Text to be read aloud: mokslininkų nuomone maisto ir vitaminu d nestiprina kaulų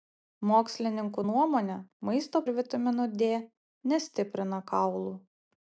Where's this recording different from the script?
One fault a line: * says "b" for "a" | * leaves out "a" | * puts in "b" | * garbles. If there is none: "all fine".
all fine